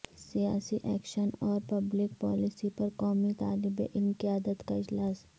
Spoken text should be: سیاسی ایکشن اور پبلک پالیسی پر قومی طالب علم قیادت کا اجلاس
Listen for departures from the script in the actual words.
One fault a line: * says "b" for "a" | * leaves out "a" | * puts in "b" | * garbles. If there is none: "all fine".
all fine